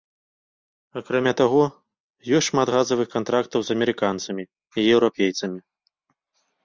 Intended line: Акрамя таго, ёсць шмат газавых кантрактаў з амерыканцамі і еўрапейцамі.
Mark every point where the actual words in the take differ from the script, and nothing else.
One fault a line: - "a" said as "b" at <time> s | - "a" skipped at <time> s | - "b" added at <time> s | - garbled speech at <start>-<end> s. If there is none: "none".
none